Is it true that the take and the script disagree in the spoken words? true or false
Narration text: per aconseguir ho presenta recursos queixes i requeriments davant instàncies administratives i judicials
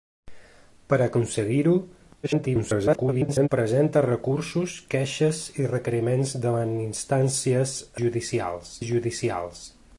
true